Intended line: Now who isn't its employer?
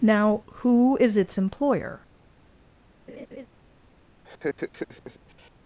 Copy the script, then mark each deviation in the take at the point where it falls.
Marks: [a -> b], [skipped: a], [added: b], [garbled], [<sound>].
Now who [isn't -> is] its employer? [laugh] [laugh]